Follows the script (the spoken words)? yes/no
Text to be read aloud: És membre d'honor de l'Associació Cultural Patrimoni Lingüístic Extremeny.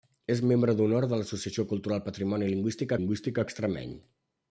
no